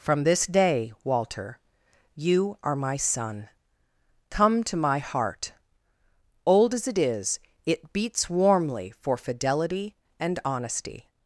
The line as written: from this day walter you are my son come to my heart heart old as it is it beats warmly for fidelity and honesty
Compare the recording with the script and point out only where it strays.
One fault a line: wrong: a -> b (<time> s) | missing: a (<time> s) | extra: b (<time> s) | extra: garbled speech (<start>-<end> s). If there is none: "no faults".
missing: heart (5.5 s)